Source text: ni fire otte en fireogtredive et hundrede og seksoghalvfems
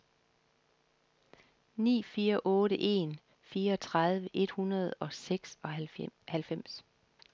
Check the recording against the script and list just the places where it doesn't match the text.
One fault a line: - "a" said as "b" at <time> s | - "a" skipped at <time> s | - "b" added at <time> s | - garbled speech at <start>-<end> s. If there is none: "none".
none